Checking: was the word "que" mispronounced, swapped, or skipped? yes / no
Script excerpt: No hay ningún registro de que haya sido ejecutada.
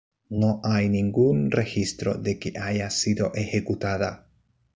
no